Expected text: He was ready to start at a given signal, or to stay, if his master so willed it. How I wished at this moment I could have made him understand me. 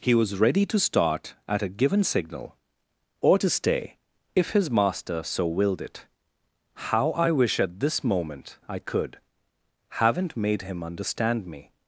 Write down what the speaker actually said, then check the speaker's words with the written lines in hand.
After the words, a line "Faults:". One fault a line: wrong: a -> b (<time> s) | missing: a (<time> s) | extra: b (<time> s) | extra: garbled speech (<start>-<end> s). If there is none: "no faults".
He was ready to start at a given signal, or to stay, if his master so willed it. How I wish at this moment I could haven't made him understand me.
Faults:
wrong: wished -> wish (7.3 s)
wrong: have -> haven't (9.9 s)